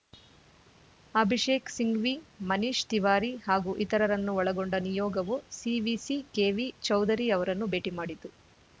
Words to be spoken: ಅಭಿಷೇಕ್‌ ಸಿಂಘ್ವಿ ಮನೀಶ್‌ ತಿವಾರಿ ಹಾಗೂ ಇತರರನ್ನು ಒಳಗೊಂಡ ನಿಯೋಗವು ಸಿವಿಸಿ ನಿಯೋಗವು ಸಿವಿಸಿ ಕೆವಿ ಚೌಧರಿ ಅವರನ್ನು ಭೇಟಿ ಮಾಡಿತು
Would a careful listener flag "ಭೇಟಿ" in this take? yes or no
no